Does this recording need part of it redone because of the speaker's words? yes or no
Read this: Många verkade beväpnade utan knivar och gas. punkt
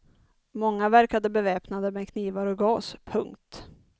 yes